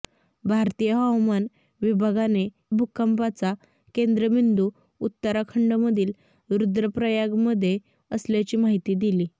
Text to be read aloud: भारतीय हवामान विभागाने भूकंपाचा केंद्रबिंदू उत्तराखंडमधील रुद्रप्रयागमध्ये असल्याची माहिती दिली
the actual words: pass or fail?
pass